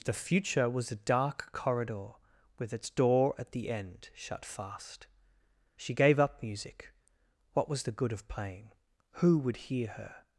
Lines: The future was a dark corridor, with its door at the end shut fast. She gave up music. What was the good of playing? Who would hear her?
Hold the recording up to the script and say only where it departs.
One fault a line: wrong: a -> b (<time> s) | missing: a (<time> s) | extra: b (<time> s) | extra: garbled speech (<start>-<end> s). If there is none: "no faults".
no faults